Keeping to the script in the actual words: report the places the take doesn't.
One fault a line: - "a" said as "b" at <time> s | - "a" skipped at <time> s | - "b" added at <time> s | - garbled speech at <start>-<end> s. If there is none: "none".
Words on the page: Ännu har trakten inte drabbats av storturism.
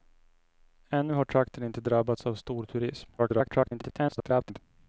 - garbled speech at 3.2-4.6 s